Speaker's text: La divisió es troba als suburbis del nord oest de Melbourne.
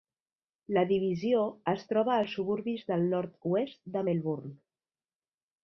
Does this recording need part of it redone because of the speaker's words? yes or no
no